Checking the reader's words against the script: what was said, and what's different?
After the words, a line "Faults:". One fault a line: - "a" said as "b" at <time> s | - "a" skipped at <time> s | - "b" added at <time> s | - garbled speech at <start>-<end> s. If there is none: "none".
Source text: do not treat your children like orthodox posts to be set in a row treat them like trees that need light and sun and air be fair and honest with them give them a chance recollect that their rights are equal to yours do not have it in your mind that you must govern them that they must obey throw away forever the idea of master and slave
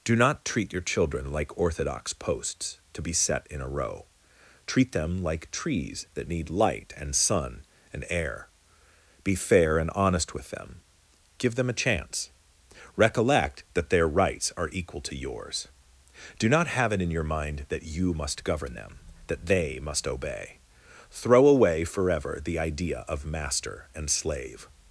do not treat your children like orthodox posts to be set in a row treat them like trees that need light and sun and air be fair and honest with them give them a chance recollect that their rights are equal to yours do not have it in your mind that you must govern them that they must obey throw away forever the idea of master and slave
Faults:
none